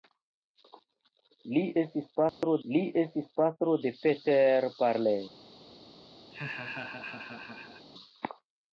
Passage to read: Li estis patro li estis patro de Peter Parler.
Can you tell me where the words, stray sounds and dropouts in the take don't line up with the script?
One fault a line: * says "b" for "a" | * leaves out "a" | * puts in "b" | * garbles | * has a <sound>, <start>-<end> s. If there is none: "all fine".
* has a dropout, 2.3-2.4 s
* has a laugh, 6.3-7.9 s